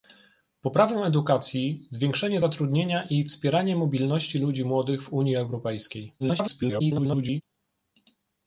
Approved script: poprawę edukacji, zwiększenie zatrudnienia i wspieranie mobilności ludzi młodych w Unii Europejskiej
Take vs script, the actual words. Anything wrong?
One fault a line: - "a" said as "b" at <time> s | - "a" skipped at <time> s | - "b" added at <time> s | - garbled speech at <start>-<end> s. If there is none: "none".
- garbled speech at 6.2-7.4 s